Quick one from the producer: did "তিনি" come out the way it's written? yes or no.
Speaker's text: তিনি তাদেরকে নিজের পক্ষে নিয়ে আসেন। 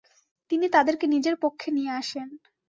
yes